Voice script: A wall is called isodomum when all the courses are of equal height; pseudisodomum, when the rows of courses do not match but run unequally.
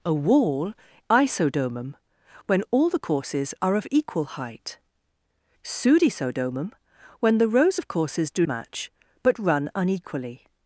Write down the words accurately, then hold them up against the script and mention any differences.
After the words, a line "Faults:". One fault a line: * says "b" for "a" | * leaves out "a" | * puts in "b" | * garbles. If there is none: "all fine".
A wall isodomum when all the courses are of equal height; pseudisodomum, when the rows of courses do match but run unequally.
Faults:
* leaves out "is called"
* leaves out "not"